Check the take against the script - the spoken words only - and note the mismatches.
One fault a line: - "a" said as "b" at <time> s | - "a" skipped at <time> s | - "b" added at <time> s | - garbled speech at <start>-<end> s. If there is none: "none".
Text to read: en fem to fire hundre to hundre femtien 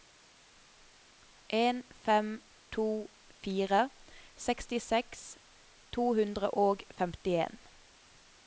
- "hundre" said as "sekstiseks" at 4.5 s
- "og" added at 6.7 s